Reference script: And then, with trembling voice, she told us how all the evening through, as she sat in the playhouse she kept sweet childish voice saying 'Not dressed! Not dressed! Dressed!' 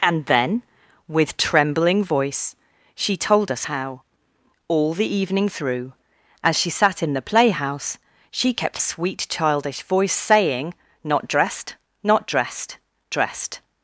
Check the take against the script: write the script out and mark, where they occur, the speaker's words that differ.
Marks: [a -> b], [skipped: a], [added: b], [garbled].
And then, with trembling voice, she told us how all the evening through, as she sat in the playhouse she kept sweet childish voice saying 'Not dressed! Not dressed! Dressed!'